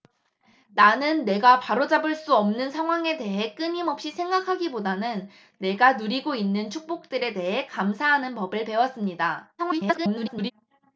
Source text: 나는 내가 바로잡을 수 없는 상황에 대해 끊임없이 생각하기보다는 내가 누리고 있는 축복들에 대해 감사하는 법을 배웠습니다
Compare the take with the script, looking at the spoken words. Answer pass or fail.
fail